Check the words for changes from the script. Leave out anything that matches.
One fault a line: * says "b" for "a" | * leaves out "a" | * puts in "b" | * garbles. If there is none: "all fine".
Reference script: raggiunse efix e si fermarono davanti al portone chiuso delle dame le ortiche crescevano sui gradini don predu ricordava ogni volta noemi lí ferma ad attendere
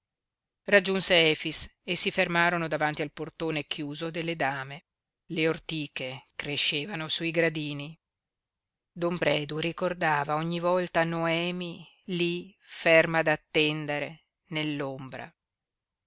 all fine